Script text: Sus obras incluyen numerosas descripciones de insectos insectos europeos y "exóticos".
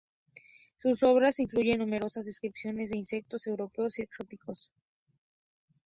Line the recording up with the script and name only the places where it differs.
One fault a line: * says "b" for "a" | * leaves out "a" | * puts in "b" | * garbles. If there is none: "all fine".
* leaves out "insectos"